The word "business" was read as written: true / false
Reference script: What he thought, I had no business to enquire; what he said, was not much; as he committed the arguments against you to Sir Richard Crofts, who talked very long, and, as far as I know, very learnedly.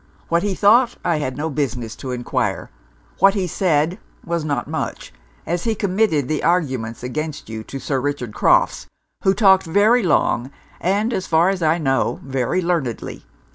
true